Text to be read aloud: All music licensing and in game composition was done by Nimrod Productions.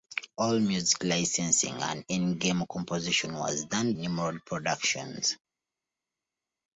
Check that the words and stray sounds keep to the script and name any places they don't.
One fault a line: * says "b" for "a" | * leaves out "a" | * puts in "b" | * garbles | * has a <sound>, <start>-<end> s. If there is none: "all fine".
* leaves out "by"